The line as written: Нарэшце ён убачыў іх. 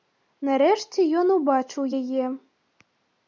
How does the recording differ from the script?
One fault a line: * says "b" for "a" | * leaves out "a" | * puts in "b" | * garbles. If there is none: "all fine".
* says "яе" for "іх"